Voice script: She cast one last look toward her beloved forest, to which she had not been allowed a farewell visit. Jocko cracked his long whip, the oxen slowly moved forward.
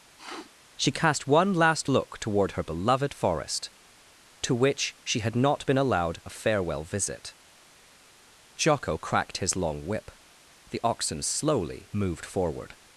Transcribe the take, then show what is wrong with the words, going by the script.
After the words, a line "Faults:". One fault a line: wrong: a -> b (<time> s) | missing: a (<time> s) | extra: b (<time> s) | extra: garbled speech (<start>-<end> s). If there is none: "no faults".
She cast one last look toward her beloved forest, to which she had not been allowed a farewell visit. Jocko cracked his long whip, the oxen slowly moved forward.
Faults:
no faults